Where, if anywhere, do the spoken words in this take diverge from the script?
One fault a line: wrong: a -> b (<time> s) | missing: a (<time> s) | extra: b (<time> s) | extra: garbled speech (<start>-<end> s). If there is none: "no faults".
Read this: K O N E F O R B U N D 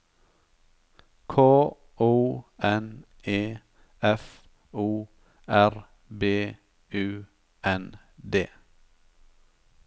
no faults